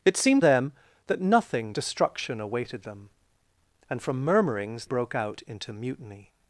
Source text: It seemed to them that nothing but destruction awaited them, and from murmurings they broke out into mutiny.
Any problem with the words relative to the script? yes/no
yes